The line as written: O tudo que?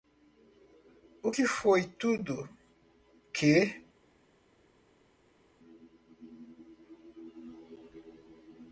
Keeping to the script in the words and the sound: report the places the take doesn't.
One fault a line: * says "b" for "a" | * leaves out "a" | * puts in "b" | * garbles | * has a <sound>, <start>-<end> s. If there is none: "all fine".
* puts in "que foi"